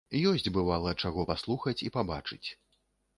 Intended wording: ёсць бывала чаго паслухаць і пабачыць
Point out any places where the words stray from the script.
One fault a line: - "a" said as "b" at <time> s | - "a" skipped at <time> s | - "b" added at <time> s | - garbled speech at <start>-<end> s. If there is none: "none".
none